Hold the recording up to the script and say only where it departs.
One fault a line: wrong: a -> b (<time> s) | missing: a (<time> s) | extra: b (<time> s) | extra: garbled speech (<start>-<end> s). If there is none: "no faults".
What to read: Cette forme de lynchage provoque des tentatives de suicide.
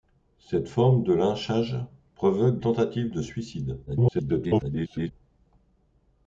missing: des (2.6 s)
extra: garbled speech (3.9-5.1 s)